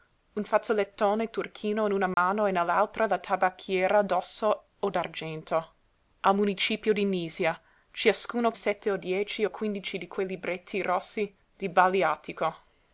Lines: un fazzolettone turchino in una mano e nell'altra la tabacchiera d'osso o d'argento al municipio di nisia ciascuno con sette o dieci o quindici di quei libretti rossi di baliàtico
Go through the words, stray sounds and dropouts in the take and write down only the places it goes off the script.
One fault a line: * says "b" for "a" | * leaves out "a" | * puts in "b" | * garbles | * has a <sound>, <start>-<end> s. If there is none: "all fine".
* has a dropout, 2.1-2.2 s
* leaves out "con"